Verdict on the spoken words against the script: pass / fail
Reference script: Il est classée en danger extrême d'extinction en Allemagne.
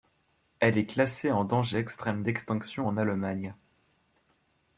fail